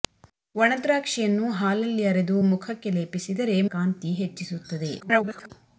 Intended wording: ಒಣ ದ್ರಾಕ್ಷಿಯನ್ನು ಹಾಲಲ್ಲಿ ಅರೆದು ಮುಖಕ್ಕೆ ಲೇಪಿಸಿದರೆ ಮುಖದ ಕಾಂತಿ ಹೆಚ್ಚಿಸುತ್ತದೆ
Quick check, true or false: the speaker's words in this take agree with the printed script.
false